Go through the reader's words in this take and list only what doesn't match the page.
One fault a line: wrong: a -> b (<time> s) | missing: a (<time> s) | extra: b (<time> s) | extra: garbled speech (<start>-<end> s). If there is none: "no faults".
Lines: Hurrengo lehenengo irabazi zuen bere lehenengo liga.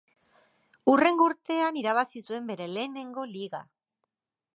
wrong: lehenengo -> urtean (1.3 s)